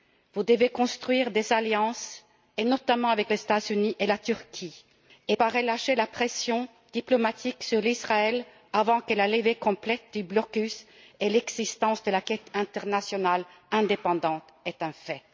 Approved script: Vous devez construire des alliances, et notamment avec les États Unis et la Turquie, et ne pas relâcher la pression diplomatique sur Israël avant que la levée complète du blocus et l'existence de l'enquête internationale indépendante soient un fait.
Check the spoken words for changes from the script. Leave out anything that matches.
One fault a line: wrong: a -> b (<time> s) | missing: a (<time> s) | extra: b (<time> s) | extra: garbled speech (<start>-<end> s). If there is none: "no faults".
missing: ne (5.3 s)